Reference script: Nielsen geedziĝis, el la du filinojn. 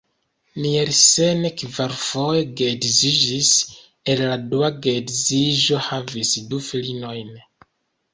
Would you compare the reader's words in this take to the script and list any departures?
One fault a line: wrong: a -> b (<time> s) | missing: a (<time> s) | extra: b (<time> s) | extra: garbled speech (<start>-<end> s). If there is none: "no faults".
extra: kvarfoje (1.6 s)
extra: dua geedziĝo havis (4.5 s)